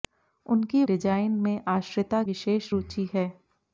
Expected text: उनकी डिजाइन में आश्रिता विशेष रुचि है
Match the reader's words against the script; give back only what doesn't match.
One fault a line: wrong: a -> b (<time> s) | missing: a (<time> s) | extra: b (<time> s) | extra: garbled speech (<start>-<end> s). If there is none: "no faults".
no faults